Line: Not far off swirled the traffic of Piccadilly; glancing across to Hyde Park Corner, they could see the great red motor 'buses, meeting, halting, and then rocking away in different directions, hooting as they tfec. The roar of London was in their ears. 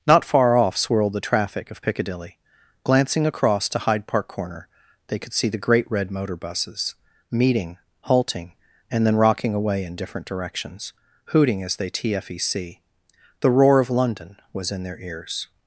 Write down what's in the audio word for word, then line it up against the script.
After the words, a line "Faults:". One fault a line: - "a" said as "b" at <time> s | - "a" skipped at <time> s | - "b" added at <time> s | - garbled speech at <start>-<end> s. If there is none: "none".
Not far off swirled the traffic of Piccadilly; glancing across to Hyde Park Corner, they could see the great red motor 'buses, meeting, halting, and then rocking away in different directions, hooting as they tfec. The roar of London was in their ears.
Faults:
none